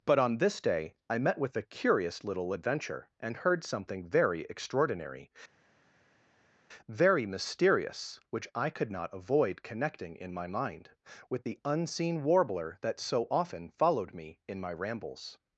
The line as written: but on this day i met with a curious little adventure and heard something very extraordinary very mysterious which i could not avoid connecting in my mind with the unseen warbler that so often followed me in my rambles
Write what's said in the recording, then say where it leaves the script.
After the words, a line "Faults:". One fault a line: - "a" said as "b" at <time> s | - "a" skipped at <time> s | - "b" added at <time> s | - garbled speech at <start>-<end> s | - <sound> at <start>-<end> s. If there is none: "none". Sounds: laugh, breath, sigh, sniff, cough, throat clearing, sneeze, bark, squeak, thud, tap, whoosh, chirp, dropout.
but on this day i met with a curious little adventure and heard something very extraordinary very mysterious which i could not avoid connecting in my mind with the unseen warbler that so often followed me in my rambles
Faults:
none